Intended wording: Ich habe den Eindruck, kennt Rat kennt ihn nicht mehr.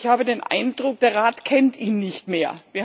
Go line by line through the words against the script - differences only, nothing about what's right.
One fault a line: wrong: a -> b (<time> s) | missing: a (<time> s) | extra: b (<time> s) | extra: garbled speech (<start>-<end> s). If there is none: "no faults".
wrong: kennt -> der (1.0 s)